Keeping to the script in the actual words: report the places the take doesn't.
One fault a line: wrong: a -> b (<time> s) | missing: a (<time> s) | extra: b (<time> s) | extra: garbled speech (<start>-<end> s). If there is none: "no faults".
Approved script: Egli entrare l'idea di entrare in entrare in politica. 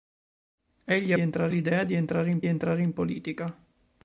no faults